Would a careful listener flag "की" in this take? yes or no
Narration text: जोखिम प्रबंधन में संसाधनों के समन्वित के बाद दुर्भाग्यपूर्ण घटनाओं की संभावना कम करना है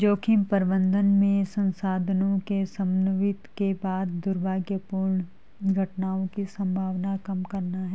no